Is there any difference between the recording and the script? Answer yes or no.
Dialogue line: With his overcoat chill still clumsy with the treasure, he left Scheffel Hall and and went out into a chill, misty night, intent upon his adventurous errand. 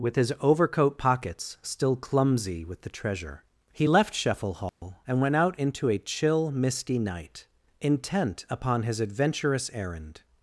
yes